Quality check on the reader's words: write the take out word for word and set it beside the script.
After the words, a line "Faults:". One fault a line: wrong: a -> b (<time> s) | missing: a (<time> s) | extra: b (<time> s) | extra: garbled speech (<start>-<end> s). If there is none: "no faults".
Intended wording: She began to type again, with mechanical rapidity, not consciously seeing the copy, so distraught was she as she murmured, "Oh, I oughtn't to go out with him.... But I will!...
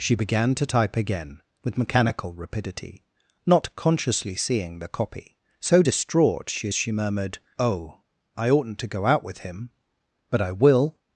She began to type again, with mechanical rapidity, not consciously seeing the copy, so distraught she as she murmured, "Oh, I oughtn't to go out with him.... But I will!...
Faults:
missing: was (6.5 s)